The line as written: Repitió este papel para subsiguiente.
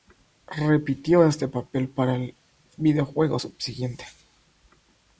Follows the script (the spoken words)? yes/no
no